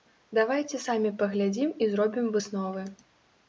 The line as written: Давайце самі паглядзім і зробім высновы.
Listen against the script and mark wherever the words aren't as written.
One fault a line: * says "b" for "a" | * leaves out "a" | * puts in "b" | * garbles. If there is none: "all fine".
all fine